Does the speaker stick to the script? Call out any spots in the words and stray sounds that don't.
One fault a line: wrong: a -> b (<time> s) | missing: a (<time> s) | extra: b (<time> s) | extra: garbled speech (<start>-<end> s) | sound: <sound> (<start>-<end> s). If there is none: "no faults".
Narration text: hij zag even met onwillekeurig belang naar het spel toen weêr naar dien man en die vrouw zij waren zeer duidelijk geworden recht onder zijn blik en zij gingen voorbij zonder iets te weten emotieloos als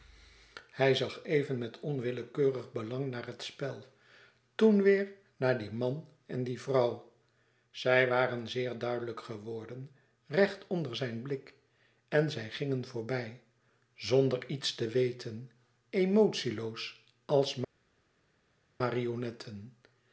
no faults